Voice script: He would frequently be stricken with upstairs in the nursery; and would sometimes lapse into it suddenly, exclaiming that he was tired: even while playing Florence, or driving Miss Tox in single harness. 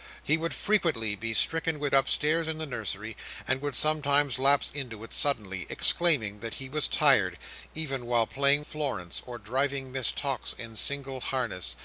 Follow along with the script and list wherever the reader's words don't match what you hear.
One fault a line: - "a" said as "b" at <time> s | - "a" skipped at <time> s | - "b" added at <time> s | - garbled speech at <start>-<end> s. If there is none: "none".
none